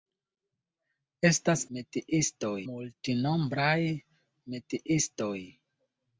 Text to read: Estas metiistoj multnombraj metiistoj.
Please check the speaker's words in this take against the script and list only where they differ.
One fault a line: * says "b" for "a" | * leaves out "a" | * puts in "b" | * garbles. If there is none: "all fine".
all fine